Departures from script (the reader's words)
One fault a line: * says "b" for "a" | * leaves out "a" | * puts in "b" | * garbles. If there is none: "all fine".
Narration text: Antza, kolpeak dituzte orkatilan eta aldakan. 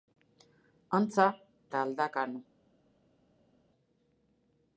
* leaves out "kolpeak dituzte orkatilan"